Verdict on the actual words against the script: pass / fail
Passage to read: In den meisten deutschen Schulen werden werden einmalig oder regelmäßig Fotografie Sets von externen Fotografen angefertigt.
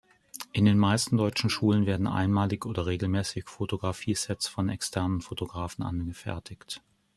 fail